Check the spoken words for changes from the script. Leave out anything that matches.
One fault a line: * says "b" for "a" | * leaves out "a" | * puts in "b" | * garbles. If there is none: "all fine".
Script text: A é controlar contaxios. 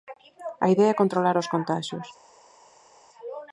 * puts in "idea"
* puts in "os"